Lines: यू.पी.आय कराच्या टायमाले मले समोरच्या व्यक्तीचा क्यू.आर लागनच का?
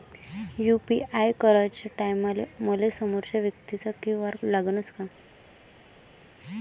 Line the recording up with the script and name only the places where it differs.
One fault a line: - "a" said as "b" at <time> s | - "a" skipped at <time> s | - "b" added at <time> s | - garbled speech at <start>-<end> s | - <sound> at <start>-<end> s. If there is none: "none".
none